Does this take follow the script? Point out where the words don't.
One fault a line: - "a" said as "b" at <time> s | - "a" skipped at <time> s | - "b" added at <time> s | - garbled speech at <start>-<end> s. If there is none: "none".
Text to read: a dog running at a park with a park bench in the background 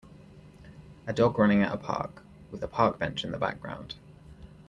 none